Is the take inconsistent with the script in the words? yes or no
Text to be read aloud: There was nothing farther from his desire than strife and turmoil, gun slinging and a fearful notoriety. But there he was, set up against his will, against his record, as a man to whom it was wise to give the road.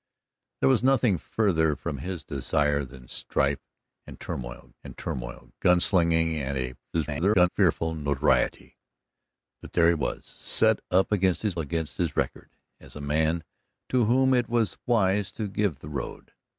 yes